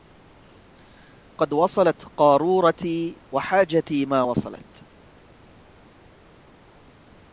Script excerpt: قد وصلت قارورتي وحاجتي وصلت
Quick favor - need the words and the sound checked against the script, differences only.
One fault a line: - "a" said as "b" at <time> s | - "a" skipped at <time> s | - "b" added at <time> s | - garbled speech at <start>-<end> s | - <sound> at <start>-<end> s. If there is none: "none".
- "ما" added at 4.1 s